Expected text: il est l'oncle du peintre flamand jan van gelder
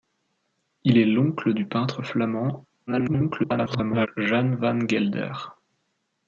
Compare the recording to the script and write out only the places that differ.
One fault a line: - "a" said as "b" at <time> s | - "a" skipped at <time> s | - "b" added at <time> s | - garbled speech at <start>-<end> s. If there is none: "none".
- garbled speech at 2.9-4.1 s